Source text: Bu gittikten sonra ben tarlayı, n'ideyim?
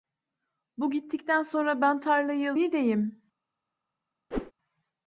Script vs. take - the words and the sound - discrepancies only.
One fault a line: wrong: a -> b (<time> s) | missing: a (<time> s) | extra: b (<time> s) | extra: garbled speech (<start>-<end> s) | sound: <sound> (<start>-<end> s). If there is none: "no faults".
sound: whoosh (4.3-4.5 s)